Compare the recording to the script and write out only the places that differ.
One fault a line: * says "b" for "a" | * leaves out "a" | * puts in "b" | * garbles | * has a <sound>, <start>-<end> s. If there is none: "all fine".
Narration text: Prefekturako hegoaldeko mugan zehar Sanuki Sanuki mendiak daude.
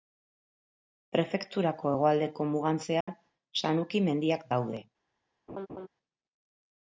* has a dropout, 3.0-3.1 s
* leaves out "Sanuki"
* has a laugh, 5.5-5.9 s